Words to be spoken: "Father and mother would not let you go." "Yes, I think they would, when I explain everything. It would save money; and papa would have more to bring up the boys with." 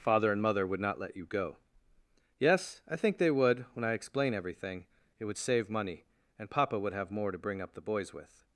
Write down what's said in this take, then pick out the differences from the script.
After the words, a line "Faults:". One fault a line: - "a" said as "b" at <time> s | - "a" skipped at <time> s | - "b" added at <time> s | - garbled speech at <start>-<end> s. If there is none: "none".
"Father and mother would not let you go." "Yes, I think they would, when I explain everything. It would save money; and papa would have more to bring up the boys with."
Faults:
none